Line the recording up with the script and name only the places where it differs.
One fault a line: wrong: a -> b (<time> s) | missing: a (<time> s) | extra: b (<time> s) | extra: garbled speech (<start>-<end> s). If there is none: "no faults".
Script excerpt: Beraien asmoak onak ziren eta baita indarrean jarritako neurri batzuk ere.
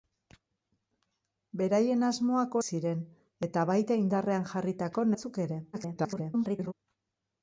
missing: onak (2.6 s)
missing: neurri (5.1 s)
extra: garbled speech (5.7-6.7 s)